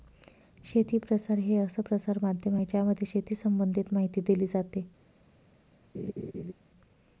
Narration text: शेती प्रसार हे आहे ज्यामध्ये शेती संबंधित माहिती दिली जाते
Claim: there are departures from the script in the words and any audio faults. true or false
true